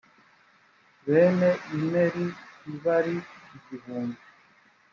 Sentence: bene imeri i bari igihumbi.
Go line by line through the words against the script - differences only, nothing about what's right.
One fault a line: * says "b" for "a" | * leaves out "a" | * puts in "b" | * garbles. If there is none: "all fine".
all fine